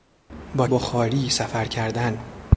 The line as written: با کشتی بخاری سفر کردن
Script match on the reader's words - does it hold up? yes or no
no